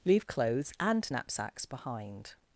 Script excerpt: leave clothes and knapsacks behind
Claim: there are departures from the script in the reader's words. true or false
false